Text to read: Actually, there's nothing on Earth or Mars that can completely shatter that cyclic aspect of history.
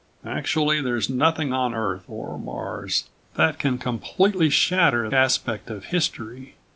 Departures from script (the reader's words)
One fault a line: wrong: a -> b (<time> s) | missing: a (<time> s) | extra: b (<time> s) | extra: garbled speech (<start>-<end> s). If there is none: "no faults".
missing: that cyclic (5.1 s)